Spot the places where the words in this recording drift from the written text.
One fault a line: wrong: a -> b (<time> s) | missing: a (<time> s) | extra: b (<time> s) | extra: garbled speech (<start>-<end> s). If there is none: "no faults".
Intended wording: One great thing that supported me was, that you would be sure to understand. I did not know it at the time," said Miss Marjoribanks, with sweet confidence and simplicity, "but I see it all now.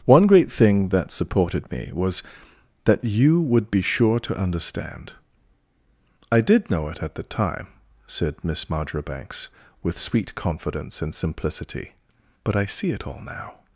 missing: not (6.7 s)